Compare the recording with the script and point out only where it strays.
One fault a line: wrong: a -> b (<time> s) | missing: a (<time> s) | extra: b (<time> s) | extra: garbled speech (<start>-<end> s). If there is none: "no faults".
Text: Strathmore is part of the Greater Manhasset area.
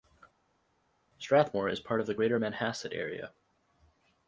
no faults